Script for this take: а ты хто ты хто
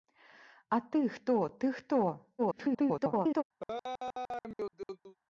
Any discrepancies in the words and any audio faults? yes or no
yes